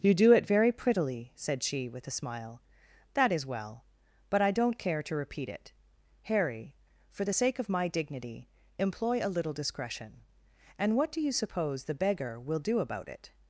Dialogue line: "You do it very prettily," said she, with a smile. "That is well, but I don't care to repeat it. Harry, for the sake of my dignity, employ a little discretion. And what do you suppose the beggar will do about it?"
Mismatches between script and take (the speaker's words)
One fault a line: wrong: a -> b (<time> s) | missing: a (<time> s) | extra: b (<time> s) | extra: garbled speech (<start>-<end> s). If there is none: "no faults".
no faults